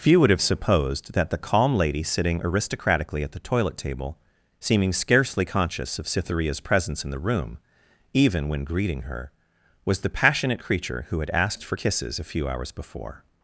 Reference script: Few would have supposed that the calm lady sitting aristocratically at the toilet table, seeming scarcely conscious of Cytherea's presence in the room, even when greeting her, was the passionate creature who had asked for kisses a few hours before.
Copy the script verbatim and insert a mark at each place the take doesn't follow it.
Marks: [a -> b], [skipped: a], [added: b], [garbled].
Few would have supposed that the calm lady sitting aristocratically at the toilet table, seeming scarcely conscious of Cytherea's presence in the room, even when greeting her, was the passionate creature who had asked for kisses a few hours before.